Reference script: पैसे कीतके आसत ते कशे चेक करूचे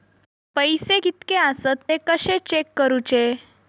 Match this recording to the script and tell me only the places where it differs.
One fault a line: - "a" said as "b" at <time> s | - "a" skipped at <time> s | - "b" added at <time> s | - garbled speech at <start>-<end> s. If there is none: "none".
none